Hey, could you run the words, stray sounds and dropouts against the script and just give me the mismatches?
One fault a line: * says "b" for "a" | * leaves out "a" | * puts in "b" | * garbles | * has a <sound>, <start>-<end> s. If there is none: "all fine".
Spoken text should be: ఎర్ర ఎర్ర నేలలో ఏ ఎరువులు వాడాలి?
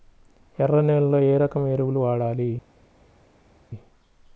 * leaves out "ఎర్ర"
* puts in "రకం"